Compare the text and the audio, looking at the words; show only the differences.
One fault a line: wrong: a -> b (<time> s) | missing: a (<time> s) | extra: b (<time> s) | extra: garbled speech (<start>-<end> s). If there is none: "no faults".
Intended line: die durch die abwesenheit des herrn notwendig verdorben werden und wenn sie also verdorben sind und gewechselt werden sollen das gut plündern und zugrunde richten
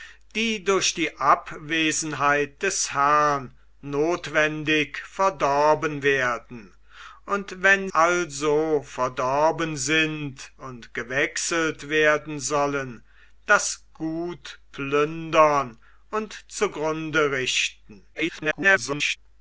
missing: sie (7.9 s)
extra: garbled speech (18.1-19.2 s)